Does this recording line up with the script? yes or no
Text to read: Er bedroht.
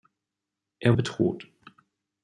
yes